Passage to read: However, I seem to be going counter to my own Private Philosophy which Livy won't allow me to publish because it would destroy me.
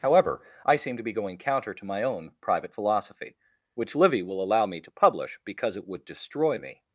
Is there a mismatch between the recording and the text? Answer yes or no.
yes